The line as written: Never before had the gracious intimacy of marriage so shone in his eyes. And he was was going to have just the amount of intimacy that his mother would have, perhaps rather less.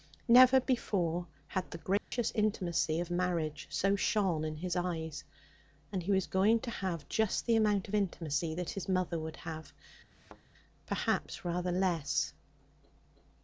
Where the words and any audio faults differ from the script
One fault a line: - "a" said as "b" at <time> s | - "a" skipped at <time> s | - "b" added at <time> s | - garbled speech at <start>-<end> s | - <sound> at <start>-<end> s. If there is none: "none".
- dropout at 2.0-2.1 s
- "was" skipped at 6.2 s
- thud at 10.1-10.4 s